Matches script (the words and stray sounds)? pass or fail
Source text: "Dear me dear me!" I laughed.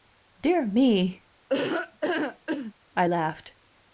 fail